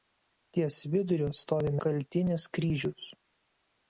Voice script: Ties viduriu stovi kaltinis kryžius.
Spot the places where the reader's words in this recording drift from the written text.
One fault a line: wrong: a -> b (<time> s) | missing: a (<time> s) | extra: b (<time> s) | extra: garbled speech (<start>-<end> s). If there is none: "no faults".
no faults